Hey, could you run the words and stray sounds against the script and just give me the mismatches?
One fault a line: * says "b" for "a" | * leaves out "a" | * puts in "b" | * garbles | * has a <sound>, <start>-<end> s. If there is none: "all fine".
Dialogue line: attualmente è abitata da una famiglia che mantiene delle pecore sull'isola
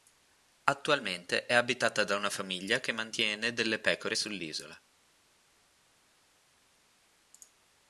all fine